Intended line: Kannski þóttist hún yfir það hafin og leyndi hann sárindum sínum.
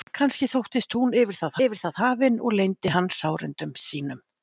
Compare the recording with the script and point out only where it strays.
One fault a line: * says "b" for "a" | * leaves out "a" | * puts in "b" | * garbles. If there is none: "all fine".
* puts in "yfir það"